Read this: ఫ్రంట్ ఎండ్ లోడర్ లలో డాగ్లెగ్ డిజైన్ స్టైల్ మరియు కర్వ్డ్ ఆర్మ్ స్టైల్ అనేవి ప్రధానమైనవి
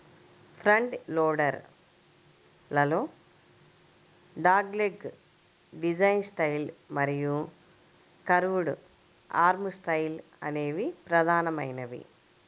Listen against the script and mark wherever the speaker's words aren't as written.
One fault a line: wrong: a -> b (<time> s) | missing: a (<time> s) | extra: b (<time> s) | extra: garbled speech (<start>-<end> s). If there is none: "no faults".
missing: ఎండ్ (0.9 s)